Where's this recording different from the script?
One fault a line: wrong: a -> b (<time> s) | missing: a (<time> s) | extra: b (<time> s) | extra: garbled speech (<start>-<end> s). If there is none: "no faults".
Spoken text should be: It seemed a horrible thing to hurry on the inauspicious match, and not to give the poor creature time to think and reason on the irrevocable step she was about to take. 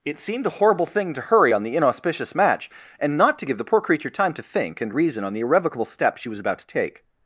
no faults